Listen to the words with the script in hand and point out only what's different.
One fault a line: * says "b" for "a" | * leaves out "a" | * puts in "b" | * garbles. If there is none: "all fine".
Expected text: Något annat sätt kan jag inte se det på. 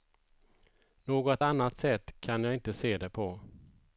all fine